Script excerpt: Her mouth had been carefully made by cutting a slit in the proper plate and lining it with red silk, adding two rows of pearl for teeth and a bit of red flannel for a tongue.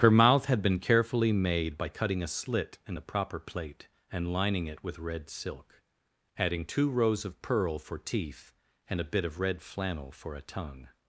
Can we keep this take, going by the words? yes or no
yes